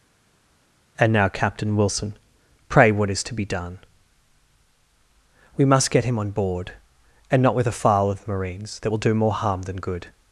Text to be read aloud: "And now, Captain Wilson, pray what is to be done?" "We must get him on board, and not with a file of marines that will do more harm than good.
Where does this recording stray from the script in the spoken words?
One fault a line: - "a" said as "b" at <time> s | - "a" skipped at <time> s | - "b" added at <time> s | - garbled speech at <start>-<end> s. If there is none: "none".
none